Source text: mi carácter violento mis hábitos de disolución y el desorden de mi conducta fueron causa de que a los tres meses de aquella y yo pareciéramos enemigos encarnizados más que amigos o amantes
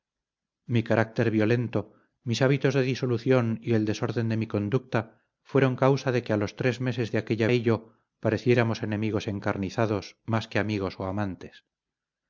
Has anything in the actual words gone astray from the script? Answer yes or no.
no